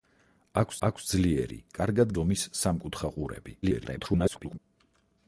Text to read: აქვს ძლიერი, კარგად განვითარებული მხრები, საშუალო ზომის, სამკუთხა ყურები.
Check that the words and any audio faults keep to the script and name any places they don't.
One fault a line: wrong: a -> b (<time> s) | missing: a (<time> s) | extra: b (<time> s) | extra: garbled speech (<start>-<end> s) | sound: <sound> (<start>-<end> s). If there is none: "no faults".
extra: აქვს (0.9 s)
missing: განვითარებული მხრები საშუალო (2.1 s)
extra: garbled speech (3.6-4.6 s)